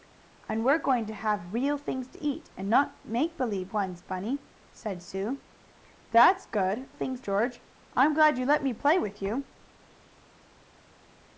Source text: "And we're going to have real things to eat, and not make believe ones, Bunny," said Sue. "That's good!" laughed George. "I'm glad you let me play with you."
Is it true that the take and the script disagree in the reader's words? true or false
true